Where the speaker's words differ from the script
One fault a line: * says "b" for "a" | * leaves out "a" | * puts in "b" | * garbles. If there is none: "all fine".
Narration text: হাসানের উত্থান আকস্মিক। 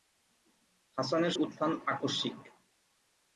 all fine